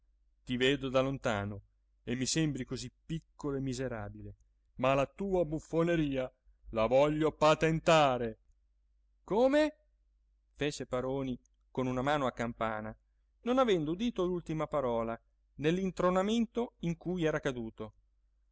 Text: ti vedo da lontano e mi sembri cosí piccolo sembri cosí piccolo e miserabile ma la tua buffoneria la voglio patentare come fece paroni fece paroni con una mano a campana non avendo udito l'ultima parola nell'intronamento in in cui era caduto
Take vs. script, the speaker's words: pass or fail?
fail